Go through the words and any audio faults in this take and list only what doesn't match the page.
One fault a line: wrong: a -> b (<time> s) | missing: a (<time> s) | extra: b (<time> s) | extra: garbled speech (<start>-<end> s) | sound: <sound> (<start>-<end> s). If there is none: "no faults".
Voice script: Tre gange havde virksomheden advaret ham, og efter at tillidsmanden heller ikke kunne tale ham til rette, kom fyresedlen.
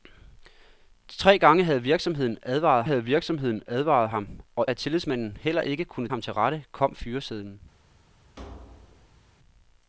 extra: havde virksomheden advaret (2.8 s)
missing: efter (4.7 s)
missing: tale (6.1 s)
sound: thud (8.4-9.3 s)